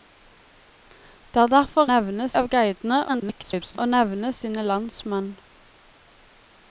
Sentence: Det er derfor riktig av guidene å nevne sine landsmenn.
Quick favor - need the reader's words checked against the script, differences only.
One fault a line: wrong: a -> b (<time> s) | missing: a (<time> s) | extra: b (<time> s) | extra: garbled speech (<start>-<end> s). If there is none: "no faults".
wrong: riktig -> nevne (1.9 s)
extra: garbled speech (3.1-3.8 s)